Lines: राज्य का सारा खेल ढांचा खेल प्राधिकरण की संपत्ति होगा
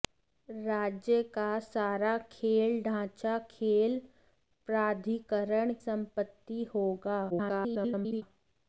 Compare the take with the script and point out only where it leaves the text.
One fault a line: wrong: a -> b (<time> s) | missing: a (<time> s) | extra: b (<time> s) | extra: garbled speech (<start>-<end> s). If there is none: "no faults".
missing: की (5.7 s)
extra: garbled speech (7.3-8.2 s)